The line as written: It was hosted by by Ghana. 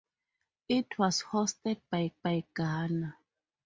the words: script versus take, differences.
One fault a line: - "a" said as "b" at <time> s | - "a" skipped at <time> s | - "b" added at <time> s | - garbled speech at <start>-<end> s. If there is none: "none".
none